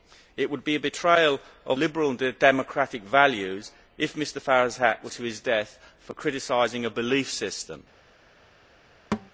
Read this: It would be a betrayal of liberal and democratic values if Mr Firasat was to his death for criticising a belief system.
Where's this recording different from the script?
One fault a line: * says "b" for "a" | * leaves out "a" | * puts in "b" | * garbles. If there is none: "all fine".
all fine